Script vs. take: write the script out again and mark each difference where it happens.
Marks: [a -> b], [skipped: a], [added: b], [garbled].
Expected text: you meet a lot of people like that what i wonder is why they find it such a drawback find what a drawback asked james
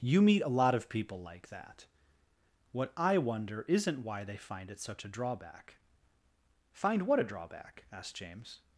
you meet a lot of people like that what i wonder [is -> isn't] why they find it such a drawback find what a drawback asked james